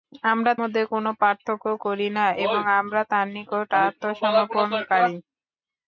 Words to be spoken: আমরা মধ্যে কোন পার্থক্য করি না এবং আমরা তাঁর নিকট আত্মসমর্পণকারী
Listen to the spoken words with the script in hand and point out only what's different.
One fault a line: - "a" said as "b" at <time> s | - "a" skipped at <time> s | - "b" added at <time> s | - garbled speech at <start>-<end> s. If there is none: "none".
none